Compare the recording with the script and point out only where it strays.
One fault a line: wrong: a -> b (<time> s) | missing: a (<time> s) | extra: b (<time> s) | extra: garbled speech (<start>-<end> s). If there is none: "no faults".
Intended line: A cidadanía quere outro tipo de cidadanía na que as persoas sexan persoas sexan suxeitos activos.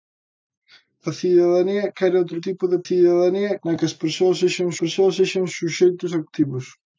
no faults